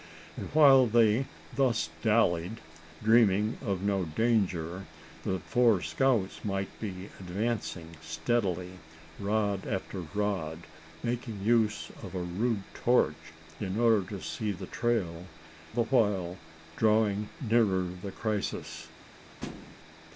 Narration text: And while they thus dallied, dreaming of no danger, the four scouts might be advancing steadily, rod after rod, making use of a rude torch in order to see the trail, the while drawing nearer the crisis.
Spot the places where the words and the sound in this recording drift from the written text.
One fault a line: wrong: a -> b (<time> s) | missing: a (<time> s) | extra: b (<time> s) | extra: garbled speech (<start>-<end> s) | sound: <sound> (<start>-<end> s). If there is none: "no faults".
sound: thud (19.4-19.8 s)